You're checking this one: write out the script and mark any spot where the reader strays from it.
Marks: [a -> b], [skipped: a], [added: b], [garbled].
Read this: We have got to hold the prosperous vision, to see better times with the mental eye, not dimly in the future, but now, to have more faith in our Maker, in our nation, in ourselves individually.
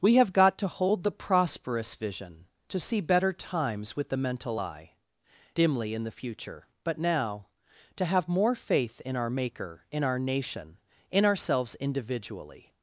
We have got to hold the prosperous vision, to see better times with the mental eye, [skipped: not] dimly in the future, but now, to have more faith in our Maker, in our nation, in ourselves individually.